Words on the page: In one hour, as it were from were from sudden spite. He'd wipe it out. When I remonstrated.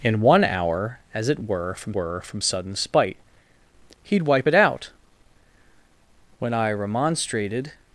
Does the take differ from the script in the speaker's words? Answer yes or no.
no